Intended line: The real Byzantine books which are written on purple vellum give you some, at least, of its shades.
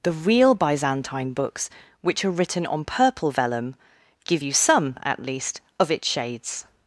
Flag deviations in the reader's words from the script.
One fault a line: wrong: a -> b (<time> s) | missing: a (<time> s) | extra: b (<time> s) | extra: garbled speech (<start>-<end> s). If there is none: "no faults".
no faults